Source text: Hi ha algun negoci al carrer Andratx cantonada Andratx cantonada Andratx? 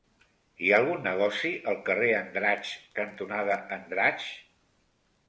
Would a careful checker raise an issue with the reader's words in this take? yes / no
yes